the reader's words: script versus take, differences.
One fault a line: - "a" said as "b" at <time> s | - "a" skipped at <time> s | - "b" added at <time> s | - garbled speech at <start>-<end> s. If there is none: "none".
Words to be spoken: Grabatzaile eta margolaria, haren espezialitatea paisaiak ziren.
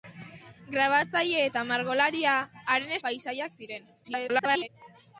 - "espezialitatea" skipped at 3.0 s
- garbled speech at 4.0-4.7 s